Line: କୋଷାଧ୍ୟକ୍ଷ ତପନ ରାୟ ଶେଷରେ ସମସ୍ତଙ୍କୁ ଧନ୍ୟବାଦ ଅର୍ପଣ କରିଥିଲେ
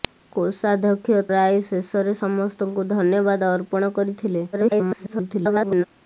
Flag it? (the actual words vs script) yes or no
yes